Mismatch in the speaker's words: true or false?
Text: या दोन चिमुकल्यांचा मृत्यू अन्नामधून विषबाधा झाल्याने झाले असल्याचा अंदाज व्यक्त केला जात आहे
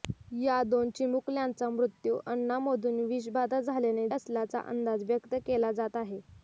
true